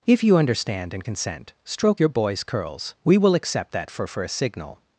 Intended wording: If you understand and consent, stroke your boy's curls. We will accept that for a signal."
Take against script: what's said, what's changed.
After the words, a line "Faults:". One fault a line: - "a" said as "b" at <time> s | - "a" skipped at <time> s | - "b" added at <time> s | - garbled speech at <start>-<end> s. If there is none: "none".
If you understand and consent, stroke your boy's curls. We will accept that for for a signal."
Faults:
- "for" added at 4.1 s